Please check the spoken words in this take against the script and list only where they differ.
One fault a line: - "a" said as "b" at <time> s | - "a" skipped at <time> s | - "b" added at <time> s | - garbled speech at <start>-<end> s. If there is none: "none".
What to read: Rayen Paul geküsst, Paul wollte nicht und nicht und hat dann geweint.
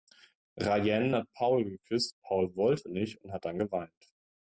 - "hat" added at 1.1 s
- "nicht und" skipped at 3.3 s